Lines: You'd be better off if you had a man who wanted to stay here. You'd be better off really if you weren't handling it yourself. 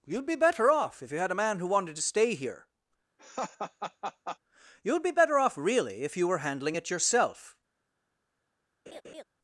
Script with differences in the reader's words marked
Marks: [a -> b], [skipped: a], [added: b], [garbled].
You'd be better off if you had a man who wanted to stay here. You'd be better off really if you [weren't -> were] handling it yourself.